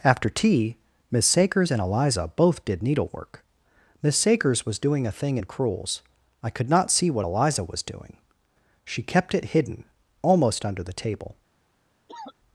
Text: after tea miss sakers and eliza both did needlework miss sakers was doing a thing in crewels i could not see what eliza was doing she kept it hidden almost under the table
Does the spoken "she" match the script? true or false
true